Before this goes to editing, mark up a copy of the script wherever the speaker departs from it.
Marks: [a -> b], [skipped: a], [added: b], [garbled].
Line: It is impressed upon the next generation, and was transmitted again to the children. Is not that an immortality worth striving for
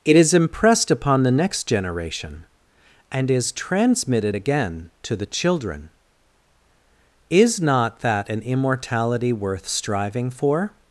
It is impressed upon the next generation, and [was -> is] transmitted again to the children. Is not that an immortality worth striving for